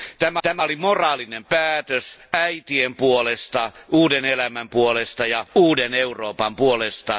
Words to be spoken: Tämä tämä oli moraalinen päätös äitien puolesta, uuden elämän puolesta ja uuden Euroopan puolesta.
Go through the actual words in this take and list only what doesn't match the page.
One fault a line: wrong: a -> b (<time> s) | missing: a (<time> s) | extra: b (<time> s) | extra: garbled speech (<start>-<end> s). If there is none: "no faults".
no faults